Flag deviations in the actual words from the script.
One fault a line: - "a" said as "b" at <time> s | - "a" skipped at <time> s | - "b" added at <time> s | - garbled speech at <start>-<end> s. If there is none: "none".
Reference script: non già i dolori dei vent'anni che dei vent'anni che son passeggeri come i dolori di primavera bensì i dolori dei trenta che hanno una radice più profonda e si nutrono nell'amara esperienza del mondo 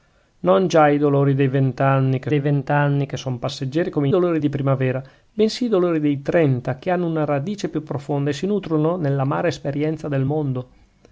none